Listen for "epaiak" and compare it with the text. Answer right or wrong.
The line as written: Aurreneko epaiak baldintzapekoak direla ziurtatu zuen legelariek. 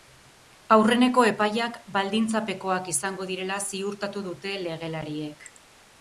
right